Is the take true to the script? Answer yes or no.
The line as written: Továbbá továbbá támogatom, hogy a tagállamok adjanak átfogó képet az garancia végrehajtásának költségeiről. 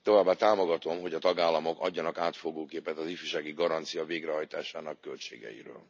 no